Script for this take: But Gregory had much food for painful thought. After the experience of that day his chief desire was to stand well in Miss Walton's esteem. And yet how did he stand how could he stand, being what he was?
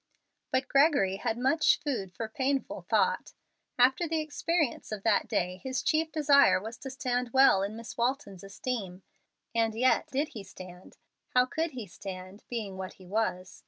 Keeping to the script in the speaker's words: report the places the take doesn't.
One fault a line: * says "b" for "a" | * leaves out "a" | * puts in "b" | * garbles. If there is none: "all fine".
* leaves out "how"